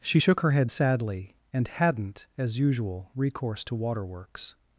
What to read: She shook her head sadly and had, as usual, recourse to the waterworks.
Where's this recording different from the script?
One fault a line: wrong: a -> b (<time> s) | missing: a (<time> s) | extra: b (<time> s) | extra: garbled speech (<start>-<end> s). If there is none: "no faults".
wrong: had -> hadn't (1.7 s)
missing: the (3.7 s)